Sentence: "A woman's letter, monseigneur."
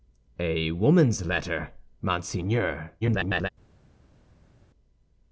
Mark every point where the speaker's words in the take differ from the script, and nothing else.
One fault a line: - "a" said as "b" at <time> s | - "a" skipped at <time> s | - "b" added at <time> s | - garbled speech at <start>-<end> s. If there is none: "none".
- garbled speech at 3.0-3.5 s